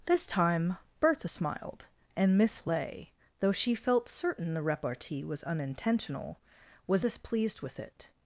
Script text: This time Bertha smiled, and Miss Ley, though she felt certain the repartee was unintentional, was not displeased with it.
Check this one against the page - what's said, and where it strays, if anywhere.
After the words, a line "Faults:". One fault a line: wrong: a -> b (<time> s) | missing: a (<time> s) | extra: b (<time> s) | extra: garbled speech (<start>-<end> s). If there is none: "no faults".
This time Bertha smiled, and Miss Ley, though she felt certain the repartee was unintentional, was displeased with it.
Faults:
missing: not (7.1 s)